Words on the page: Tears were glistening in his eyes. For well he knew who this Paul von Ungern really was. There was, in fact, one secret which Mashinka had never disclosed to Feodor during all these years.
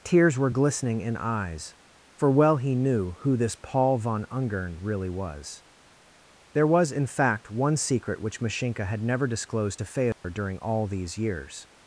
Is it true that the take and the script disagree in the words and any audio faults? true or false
true